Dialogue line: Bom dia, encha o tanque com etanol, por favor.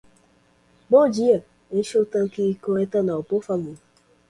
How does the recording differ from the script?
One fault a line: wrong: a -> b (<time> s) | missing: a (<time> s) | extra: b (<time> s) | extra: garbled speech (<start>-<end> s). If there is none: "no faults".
no faults